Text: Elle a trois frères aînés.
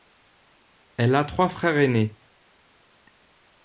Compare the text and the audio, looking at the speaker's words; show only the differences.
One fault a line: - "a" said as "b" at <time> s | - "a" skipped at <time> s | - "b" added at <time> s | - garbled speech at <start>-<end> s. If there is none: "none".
none